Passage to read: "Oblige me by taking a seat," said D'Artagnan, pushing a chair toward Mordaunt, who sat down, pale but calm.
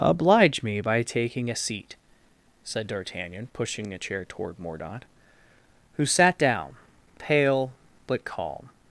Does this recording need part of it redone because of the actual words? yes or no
no